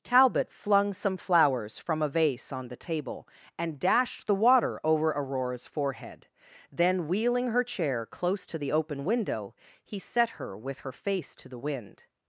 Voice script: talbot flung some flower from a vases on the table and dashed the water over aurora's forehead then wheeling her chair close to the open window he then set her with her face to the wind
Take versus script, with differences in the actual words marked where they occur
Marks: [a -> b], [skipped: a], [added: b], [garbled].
talbot flung some [flower -> flowers] from a [vases -> vase] on the table and dashed the water over aurora's forehead then wheeling her chair close to the open window he [skipped: then] set her with her face to the wind